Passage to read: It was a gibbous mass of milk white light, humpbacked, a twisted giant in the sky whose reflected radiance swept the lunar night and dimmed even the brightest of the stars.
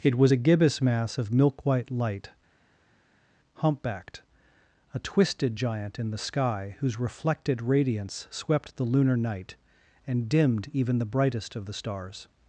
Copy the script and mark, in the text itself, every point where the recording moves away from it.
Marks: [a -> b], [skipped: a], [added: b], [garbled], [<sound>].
It was a gibbous mass of milk white light, humpbacked, a twisted giant in the sky whose reflected radiance swept the lunar night and dimmed even the brightest of the stars.